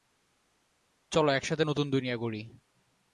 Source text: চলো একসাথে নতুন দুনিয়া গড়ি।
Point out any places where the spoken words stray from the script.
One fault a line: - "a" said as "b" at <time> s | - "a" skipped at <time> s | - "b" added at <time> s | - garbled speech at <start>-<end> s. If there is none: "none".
none